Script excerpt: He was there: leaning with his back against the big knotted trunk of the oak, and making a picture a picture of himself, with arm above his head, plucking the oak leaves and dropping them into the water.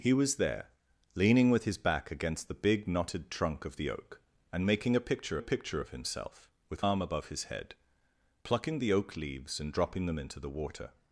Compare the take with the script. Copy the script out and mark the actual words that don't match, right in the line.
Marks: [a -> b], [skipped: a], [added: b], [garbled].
He was there: leaning with his back against the big knotted trunk of the oak, and making a picture a picture of himself, with arm above his head, plucking the oak leaves and dropping them into the water.